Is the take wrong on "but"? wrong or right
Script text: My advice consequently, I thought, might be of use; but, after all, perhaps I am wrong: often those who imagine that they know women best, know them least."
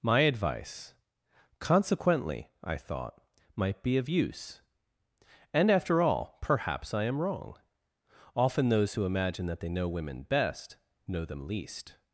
wrong